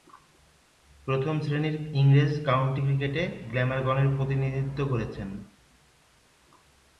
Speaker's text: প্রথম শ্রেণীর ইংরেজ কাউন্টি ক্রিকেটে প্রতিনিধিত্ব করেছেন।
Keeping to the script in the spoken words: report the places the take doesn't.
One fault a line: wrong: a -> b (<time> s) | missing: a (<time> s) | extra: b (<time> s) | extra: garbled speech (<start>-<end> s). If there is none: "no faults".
extra: গ্ল্যামারগনের (3.5 s)